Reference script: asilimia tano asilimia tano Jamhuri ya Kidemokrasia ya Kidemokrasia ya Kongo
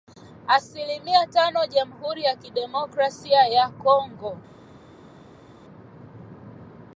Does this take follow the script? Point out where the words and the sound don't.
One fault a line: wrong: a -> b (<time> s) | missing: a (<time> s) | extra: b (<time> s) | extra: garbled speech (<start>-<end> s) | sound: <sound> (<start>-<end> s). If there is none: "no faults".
missing: asilimia tano (1.6 s)
missing: Kidemokrasia ya (3.7 s)